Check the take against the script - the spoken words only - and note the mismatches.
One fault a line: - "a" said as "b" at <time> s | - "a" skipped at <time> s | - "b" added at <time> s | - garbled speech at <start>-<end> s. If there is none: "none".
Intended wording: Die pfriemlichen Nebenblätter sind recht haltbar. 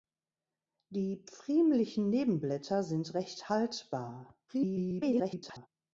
- garbled speech at 4.5-5.7 s